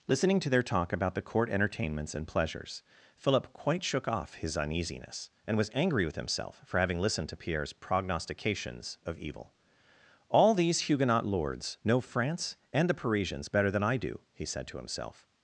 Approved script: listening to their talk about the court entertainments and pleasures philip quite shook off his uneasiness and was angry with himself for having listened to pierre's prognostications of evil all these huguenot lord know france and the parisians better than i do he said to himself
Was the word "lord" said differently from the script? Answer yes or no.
yes